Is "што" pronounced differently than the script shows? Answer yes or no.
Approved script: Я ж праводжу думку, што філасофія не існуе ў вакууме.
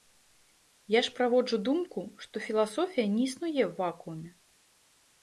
no